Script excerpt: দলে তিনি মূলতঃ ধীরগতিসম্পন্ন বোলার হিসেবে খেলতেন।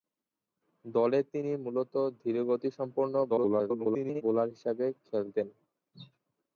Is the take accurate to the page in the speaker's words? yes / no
no